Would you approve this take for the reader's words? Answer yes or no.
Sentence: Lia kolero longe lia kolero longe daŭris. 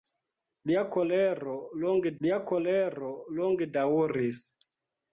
yes